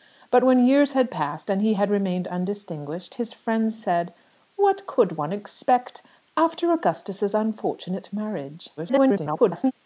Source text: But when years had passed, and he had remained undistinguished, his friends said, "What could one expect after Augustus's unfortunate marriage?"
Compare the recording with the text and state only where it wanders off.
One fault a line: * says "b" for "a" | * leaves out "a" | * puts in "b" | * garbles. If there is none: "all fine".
* garbles